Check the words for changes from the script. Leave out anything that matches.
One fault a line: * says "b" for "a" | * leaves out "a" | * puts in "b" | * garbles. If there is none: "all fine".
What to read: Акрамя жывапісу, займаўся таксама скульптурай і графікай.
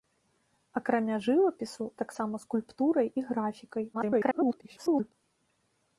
* leaves out "займаўся"
* garbles